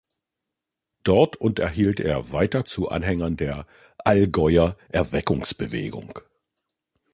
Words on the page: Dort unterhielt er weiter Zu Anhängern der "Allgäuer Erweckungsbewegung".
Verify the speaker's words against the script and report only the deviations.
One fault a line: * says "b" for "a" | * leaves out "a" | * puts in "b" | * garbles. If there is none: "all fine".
all fine